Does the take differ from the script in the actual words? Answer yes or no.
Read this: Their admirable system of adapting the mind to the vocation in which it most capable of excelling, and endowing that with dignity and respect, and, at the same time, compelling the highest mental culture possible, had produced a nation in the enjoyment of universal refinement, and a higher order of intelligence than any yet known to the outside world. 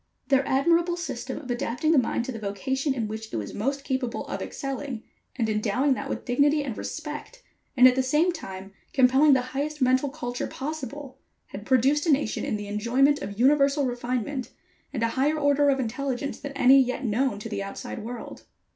yes